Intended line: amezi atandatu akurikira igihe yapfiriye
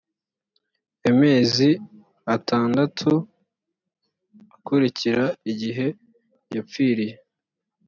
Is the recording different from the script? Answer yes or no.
no